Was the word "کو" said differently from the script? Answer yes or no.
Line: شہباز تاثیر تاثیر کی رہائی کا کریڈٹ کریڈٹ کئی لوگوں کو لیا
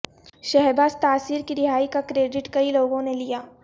yes